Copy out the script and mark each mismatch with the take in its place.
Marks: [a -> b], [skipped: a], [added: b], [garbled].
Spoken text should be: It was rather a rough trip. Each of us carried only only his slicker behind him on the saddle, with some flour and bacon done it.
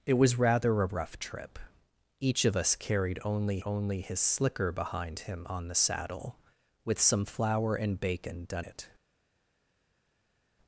It was rather a rough trip. Each of us carried only only his slicker behind him on the saddle, with some flour and bacon done it.